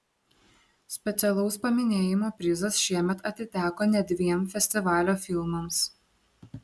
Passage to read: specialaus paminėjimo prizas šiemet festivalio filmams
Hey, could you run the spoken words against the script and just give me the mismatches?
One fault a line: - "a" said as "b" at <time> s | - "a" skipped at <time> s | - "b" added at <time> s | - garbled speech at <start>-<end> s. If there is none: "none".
- "atiteko net dviem" added at 3.3 s